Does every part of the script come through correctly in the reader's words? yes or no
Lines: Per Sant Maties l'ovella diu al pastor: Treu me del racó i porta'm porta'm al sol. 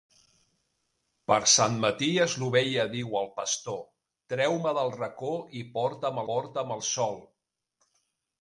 yes